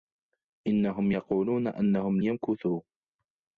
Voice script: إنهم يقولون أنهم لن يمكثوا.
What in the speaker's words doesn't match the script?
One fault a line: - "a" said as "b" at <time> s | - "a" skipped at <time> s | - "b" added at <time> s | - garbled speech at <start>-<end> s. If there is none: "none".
- "لن" skipped at 2.2 s